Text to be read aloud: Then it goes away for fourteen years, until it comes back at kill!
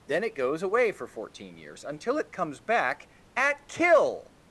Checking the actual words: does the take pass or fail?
pass